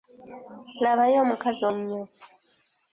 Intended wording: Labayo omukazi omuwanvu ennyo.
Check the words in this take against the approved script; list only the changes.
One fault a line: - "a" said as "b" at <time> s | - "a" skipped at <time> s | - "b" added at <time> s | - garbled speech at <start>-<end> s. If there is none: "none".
- "omuwanvu" skipped at 1.6 s